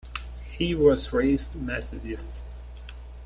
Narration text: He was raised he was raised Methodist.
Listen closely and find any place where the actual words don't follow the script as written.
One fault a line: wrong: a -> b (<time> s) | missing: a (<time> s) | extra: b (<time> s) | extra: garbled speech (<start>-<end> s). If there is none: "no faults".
missing: he was raised (1.6 s)